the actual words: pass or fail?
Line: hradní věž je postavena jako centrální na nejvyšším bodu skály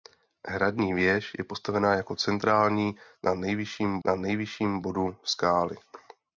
fail